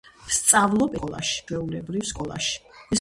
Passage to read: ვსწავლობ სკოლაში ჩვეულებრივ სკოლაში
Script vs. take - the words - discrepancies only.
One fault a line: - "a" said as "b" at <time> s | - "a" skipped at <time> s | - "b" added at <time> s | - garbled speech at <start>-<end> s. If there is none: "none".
none